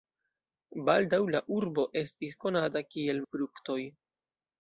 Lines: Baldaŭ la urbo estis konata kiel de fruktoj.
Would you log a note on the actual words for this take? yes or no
no